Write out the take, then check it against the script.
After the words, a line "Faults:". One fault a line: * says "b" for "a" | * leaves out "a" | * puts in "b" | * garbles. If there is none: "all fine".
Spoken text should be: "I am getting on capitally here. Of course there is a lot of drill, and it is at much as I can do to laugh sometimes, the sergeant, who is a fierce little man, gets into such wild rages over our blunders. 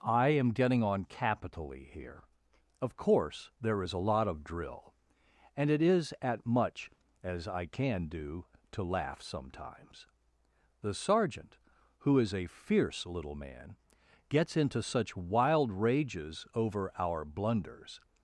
"I am getting on capitally here. Of course there is a lot of drill, and it is at much as I can do to laugh sometimes, the sergeant, who is a fierce little man, gets into such wild rages over our blunders.
Faults:
all fine